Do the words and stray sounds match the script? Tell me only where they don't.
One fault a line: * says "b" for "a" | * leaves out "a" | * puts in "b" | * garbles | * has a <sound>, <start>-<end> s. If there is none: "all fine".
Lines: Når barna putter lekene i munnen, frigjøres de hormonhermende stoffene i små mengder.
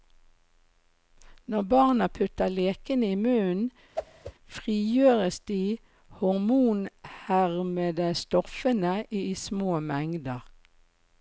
* has a whoosh, 3.9-4.3 s